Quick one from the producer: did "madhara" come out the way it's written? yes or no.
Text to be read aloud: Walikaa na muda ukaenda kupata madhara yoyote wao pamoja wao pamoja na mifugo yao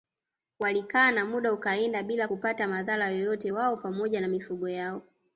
yes